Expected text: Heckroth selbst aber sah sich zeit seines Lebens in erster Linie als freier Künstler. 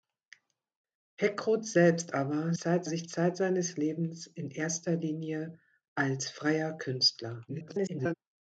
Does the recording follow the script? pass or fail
fail